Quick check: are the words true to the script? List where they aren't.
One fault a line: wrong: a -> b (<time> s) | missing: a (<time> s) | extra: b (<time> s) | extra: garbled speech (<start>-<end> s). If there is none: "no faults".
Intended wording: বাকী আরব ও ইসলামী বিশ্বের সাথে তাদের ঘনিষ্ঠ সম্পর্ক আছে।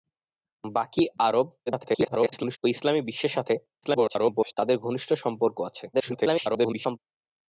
extra: garbled speech (1.7-2.6 s)
extra: garbled speech (3.8-4.5 s)
extra: garbled speech (5.9-7.0 s)